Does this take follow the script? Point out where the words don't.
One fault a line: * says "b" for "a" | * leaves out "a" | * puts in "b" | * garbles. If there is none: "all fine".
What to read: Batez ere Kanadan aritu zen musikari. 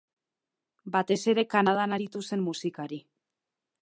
all fine